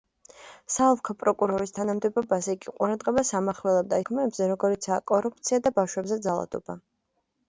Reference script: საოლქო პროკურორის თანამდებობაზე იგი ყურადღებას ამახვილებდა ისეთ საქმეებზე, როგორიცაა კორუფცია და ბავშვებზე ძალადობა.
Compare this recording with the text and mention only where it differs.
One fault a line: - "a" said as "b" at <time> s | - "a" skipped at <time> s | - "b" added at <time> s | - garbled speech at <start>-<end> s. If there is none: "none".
- "ისეთ" skipped at 4.0 s